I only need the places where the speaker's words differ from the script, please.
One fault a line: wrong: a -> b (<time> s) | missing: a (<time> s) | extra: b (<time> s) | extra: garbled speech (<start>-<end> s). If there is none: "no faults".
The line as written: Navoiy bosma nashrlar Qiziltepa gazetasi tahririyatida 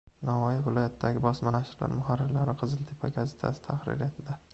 extra: viloyatidagi (0.7 s)
extra: muharrirlari (2.0 s)